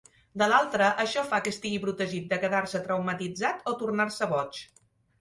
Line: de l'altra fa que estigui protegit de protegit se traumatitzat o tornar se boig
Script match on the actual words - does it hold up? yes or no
no